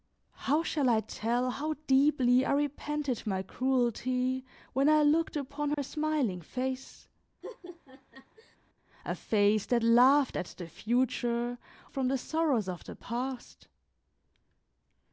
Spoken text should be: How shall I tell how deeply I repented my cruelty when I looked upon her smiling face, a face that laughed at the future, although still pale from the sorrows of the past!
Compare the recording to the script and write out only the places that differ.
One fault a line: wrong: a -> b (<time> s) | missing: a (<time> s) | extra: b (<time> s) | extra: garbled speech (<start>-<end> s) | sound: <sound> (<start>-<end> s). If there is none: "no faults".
sound: dropout (5.7-5.8 s)
sound: laugh (7.4-8.6 s)
missing: although still pale (11.6 s)